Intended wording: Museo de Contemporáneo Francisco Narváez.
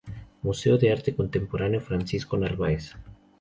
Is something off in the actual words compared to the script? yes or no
yes